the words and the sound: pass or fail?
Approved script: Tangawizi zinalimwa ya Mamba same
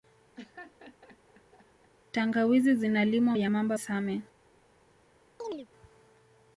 fail